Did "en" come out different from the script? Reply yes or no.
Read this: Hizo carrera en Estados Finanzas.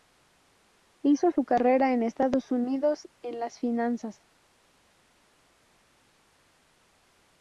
no